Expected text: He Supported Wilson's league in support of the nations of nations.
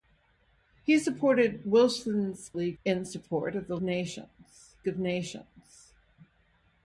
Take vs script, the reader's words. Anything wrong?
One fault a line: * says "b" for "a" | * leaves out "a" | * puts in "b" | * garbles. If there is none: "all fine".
all fine